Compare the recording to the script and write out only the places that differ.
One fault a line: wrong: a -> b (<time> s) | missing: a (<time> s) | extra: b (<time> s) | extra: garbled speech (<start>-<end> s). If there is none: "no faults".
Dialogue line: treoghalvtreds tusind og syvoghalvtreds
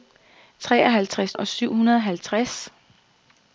missing: tusind (1.4 s)